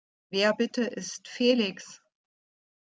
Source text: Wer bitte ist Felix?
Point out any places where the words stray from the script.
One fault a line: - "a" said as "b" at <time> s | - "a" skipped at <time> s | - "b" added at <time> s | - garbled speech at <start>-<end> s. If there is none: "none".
none